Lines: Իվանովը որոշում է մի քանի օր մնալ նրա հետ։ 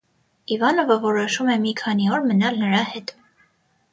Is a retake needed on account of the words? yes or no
no